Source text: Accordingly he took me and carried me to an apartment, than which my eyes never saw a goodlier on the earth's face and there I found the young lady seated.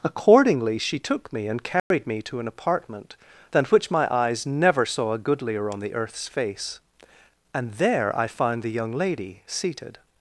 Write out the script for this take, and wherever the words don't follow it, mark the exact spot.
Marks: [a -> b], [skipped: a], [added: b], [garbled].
Accordingly [he -> she] took me and carried me to an apartment, than which my eyes never saw a goodlier on the earth's face and there I found the young lady seated.